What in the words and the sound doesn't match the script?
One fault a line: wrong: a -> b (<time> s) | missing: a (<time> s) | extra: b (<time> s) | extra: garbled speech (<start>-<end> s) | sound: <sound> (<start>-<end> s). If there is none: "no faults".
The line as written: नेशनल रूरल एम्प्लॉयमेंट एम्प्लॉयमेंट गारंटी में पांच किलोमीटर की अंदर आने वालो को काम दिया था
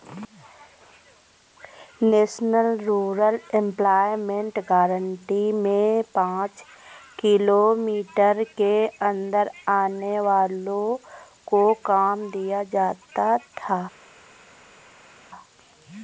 missing: एम्प्लॉयमेंट (4.6 s)
wrong: की -> के (8.6 s)
extra: जाता (12.7 s)